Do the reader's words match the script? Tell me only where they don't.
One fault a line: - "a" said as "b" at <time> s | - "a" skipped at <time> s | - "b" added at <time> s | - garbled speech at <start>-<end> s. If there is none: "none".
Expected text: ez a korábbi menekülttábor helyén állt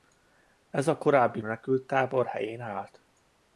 none